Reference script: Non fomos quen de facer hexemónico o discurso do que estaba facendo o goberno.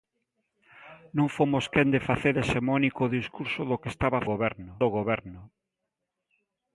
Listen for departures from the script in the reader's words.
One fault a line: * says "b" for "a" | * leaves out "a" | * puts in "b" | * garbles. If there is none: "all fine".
* says "goberno" for "facendo"